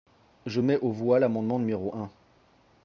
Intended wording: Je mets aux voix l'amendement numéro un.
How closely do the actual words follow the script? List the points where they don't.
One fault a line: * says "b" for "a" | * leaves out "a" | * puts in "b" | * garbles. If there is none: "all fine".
all fine